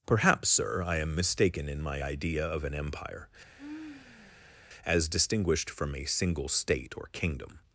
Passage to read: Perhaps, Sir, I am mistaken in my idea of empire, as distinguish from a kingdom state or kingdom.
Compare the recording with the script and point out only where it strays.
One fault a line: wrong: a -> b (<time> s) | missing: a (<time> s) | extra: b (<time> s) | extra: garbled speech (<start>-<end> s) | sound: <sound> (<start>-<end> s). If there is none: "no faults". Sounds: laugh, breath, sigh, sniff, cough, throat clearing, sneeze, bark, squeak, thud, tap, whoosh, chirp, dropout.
extra: an (2.6 s)
sound: sigh (3.6-4.6 s)
wrong: distinguish -> distinguished (5.1 s)
wrong: kingdom -> single (6.1 s)